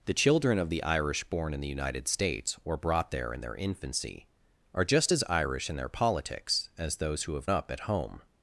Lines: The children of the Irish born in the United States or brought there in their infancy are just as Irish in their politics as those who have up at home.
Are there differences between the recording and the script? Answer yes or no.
no